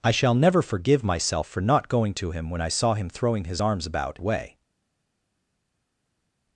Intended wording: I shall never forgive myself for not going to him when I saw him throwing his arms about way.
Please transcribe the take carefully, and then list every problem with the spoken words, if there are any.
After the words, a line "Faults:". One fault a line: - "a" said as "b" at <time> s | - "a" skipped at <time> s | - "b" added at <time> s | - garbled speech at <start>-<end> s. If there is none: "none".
I shall never forgive myself for not going to him when I saw him throwing his arms about way.
Faults:
none